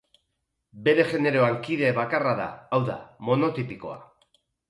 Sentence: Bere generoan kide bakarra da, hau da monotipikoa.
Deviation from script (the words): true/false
false